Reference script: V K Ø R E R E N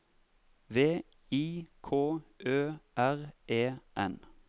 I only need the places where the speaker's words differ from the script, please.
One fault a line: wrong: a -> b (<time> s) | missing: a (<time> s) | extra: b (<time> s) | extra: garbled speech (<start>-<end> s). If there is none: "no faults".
extra: I (1.3 s)
missing: R E (3.8 s)